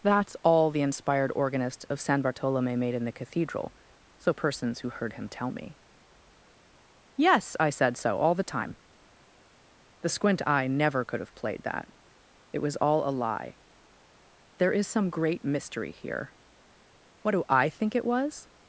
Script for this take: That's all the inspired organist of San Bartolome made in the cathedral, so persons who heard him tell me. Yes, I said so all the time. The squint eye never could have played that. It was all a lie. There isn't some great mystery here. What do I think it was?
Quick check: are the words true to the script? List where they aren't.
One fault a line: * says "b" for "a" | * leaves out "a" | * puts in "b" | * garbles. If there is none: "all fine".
* says "is" for "isn't"